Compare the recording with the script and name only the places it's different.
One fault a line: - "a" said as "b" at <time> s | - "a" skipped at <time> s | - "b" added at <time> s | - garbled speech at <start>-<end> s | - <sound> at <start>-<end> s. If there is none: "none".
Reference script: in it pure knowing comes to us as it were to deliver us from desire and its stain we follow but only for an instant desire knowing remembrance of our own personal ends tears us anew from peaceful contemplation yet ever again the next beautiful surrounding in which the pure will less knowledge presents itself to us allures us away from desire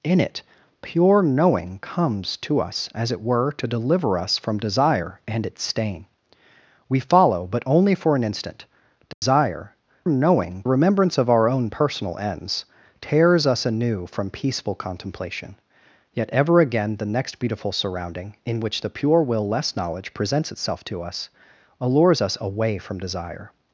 - dropout at 9.1-9.2 s